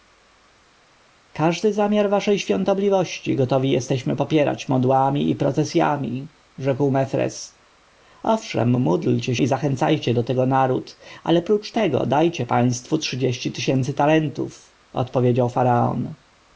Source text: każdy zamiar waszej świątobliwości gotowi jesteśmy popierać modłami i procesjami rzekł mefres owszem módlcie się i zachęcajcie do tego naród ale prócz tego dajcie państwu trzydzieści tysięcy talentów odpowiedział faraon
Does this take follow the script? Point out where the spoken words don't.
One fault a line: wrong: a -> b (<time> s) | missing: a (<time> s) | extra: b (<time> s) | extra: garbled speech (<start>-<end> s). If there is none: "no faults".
missing: się (9.4 s)